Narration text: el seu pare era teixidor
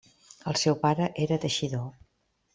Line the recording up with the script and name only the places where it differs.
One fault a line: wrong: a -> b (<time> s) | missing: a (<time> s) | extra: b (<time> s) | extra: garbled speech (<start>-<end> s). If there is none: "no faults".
no faults